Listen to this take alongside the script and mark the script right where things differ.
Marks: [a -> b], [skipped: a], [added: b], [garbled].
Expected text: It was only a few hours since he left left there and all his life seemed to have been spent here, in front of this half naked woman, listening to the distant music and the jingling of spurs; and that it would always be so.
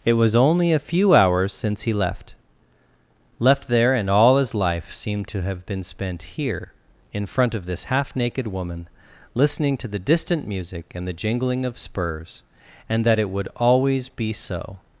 It was only a few hours since he left left there and all his life seemed to have been spent here, in front of this half naked woman, listening to the distant music and the jingling of spurs; and that it would always be so.